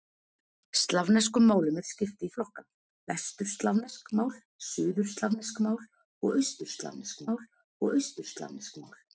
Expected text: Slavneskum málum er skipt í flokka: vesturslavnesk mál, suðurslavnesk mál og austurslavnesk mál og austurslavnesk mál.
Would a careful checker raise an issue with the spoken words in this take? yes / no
no